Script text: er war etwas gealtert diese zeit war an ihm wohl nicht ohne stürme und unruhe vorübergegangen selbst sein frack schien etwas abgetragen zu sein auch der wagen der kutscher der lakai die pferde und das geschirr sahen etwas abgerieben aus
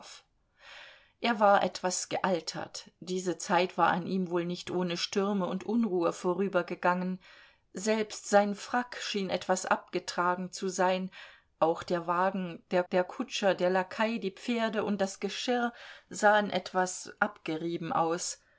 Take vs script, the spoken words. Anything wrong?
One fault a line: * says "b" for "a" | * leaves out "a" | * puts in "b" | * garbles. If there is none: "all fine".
* puts in "der"